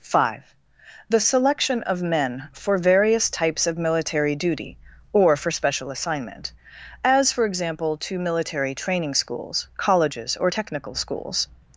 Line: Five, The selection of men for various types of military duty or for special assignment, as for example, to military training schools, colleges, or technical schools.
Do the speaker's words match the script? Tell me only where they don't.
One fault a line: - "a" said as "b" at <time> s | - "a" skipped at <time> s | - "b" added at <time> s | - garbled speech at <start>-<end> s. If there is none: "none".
none